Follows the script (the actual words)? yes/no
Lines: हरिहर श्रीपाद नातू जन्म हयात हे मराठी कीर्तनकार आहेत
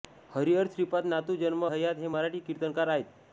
yes